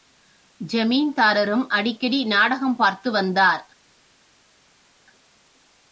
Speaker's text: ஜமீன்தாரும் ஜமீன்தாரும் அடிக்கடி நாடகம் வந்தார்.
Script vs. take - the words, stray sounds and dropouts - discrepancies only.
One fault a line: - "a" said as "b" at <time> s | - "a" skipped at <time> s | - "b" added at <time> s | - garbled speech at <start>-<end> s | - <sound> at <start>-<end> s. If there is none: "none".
- "ஜமீன்தாரும்" skipped at 1.7 s
- "பார்த்து" added at 2.8 s